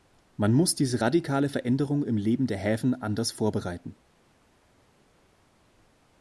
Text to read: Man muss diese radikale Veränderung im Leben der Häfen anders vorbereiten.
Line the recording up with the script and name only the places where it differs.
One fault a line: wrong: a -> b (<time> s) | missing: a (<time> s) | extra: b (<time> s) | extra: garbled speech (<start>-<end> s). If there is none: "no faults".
no faults